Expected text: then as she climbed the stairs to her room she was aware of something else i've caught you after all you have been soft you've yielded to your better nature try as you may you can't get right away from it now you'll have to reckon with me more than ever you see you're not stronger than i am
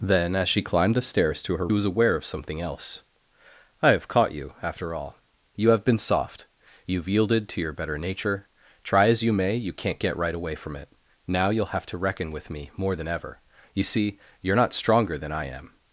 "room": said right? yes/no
no